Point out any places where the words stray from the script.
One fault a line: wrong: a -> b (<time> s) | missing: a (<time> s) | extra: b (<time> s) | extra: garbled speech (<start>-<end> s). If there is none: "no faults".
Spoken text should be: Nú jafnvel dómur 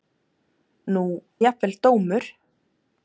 no faults